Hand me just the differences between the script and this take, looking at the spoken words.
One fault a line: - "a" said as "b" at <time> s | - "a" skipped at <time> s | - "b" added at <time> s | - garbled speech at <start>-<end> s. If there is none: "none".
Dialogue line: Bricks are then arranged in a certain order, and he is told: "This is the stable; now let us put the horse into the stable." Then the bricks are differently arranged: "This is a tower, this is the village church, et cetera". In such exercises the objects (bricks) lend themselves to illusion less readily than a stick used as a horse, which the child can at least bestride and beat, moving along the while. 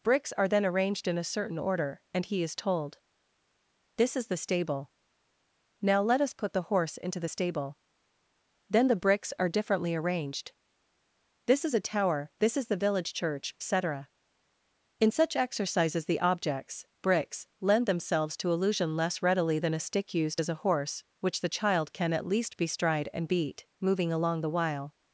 none